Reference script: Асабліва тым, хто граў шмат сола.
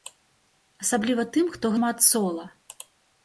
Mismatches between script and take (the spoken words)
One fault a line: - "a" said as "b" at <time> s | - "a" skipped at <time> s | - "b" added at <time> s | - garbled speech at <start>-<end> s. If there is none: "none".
- "граў" skipped at 1.7 s